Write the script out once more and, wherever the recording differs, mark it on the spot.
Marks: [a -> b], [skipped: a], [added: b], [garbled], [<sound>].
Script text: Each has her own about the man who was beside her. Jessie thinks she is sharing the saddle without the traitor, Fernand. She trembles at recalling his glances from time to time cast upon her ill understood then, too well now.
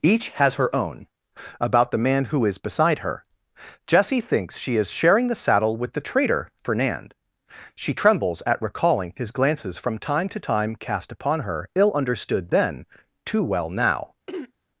Each has her own about the man who [was -> is] beside her. Jessie thinks she is sharing the saddle [without -> with] the traitor, Fernand. She trembles at recalling his glances from time to time cast upon her ill understood then, too well now. [throat clearing]